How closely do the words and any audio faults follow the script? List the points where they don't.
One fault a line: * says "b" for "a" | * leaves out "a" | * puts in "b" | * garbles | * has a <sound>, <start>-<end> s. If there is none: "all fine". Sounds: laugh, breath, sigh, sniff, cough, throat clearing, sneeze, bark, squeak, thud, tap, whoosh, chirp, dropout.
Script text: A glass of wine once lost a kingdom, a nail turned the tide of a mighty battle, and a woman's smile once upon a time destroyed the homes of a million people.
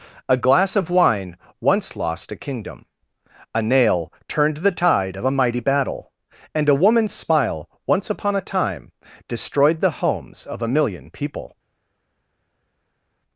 all fine